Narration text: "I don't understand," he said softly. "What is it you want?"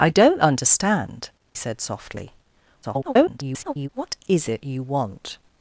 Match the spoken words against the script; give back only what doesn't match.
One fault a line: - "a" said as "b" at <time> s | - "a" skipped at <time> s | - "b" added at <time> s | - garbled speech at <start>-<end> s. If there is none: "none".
- "he" skipped at 1.3 s
- garbled speech at 2.8-3.9 s